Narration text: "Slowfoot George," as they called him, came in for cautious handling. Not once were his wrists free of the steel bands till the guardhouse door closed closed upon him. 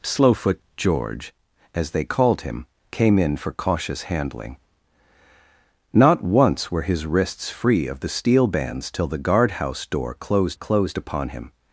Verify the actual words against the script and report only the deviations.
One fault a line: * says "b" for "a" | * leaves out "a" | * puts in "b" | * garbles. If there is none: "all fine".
all fine